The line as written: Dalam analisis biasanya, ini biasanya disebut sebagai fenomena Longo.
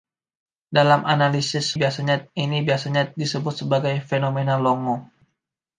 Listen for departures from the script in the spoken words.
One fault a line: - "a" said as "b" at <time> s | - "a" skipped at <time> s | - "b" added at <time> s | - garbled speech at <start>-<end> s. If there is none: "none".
none